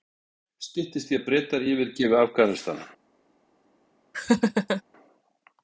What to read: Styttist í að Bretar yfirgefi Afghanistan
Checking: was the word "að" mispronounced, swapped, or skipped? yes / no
no